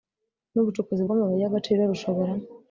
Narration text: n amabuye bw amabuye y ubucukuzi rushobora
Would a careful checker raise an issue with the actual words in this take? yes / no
yes